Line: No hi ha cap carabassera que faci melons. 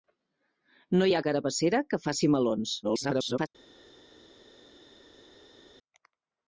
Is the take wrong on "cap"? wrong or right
wrong